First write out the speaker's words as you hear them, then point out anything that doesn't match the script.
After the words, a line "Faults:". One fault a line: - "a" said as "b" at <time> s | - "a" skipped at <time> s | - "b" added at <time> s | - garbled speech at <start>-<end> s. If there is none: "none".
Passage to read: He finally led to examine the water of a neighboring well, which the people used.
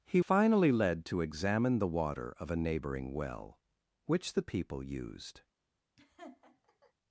He finally led to examine the water of a neighboring well, which the people used.
Faults:
none